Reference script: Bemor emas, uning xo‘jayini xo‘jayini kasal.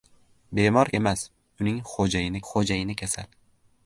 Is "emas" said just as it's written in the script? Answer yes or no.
yes